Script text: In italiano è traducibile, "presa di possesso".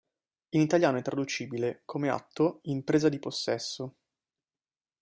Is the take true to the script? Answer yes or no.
no